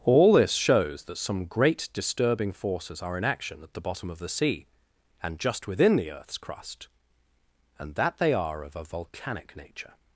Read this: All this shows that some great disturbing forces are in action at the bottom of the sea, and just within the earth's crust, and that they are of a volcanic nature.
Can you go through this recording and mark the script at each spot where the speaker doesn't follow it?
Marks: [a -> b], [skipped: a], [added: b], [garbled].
All this shows that some great disturbing forces are in action at the bottom of the sea, and just within the earth's crust, and that they are of a volcanic nature.